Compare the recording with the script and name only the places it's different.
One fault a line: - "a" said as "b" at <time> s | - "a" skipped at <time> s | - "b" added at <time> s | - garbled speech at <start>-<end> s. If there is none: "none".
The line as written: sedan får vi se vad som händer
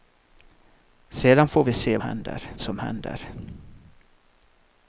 - "vad" said as "händer" at 2.0 s